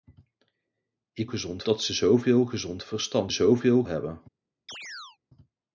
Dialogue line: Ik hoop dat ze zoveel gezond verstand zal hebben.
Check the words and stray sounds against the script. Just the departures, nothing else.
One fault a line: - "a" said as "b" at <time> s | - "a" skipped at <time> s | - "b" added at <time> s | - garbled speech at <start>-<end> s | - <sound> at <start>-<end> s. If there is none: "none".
- "hoop" said as "gezond" at 1.2 s
- "zal" said as "zoveel" at 3.3 s
- chirp at 4.7-5.2 s